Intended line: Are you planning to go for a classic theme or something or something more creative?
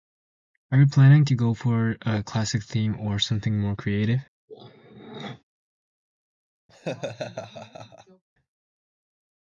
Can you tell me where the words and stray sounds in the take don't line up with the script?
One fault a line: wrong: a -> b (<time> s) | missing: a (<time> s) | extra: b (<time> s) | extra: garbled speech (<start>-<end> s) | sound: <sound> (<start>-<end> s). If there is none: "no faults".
missing: or something (3.6 s)
sound: throat clearing (4.5-5.4 s)
sound: laugh (6.7-8.2 s)